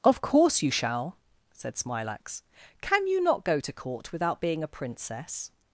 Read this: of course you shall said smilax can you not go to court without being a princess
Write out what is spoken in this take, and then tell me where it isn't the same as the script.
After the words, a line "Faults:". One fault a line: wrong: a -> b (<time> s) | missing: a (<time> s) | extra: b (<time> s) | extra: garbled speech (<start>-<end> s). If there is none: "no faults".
of course you shall said smilax can you not go to court without being a princess
Faults:
no faults